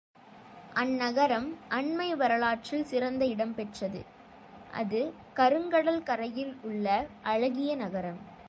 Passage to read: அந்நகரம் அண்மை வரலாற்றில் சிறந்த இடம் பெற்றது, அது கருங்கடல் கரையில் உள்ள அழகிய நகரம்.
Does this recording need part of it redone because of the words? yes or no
no